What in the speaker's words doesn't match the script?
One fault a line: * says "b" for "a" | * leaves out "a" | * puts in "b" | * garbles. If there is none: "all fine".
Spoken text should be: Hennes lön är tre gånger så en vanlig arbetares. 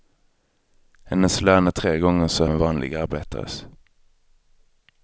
all fine